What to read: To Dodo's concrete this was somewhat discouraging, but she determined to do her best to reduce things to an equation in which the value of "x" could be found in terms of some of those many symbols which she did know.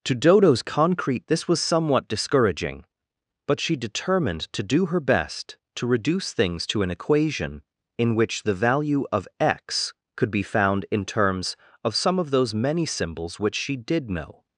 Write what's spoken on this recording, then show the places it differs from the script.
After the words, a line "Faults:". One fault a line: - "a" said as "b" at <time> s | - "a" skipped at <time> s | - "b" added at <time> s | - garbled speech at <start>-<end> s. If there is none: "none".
To Dodo's concrete this was somewhat discouraging, but she determined to do her best to reduce things to an equation in which the value of "x" could be found in terms of some of those many symbols which she did know.
Faults:
none